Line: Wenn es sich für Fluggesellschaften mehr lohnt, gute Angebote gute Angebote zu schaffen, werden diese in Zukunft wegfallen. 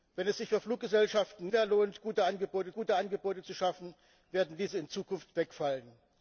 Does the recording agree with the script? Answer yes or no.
yes